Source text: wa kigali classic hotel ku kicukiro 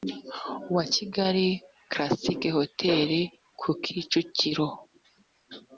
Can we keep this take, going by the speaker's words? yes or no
yes